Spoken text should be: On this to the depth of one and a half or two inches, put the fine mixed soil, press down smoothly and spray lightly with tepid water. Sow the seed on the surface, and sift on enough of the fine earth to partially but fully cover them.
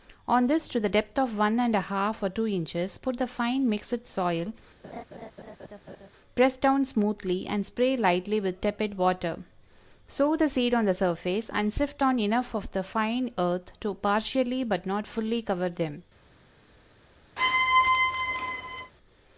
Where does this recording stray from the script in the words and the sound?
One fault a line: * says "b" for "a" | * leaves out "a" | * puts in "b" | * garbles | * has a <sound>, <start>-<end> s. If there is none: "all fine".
* has a laugh, 4.8-6.1 s
* puts in "not"
* has a squeak, 17.4-18.9 s